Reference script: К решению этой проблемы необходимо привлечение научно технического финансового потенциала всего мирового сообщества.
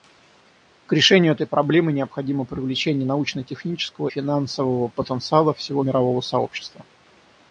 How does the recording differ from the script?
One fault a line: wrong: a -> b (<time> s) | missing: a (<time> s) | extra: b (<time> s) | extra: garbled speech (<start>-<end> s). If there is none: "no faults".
no faults